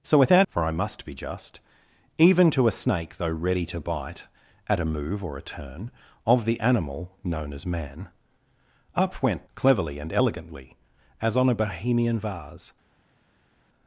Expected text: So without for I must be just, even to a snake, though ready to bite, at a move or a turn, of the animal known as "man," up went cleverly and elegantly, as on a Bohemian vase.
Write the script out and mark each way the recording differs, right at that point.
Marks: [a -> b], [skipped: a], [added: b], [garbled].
So without for I must be just, even to a snake, though ready to bite, at a move or a turn, of the animal known as "man," up went cleverly and elegantly, as on a Bohemian vase.